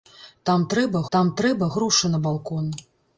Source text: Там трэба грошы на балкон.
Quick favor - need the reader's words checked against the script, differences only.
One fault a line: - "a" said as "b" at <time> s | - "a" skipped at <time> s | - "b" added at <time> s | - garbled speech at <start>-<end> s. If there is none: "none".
- "там трэба" added at 1.2 s